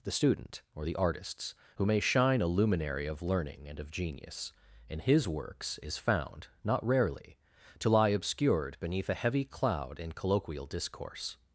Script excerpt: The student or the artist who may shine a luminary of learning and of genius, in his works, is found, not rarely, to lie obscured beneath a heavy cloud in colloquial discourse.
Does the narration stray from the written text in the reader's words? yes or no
yes